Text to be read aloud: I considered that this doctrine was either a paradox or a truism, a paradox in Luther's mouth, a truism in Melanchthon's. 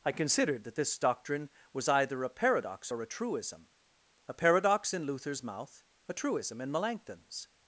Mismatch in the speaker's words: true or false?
false